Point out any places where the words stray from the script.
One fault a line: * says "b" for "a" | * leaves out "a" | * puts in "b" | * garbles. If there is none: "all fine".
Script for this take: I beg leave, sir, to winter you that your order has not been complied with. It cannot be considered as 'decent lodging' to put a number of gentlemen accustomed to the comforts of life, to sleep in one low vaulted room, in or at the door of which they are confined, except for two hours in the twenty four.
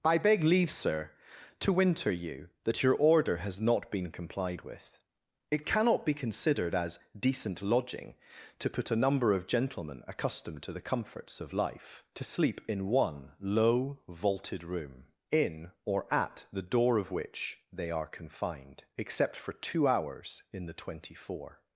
all fine